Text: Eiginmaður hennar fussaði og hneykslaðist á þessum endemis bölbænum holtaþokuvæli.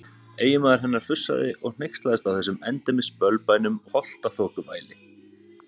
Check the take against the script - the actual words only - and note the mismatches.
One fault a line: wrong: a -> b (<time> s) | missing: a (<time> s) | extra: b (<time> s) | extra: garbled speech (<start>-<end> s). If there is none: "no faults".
no faults